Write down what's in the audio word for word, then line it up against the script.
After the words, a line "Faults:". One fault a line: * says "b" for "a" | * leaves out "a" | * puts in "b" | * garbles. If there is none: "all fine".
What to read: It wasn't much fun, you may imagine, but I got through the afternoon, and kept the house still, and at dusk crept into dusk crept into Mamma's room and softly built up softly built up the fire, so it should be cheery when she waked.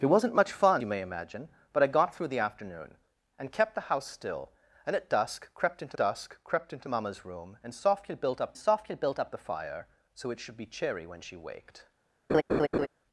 It wasn't much fun, you may imagine, but I got through the afternoon, and kept the house still, and at dusk crept into dusk crept into Mamma's room and softly built up softly built up the fire, so it should be cheery when she waked.
Faults:
all fine